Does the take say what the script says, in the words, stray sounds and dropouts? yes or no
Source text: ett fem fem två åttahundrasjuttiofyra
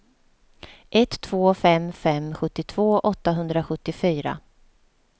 no